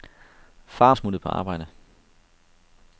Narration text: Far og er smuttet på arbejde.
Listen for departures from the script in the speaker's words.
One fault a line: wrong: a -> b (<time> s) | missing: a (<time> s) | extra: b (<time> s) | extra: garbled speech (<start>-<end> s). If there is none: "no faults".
no faults